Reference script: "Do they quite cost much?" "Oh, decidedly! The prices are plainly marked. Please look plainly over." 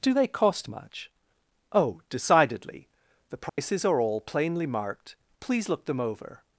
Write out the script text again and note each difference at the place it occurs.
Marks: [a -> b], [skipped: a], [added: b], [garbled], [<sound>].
"Do they [skipped: quite] cost much?" "Oh, decidedly! The prices [dropout] are [added: all] plainly marked. Please look [plainly -> them] over."